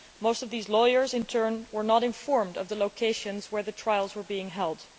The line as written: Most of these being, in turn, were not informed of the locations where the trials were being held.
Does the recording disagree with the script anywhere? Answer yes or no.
yes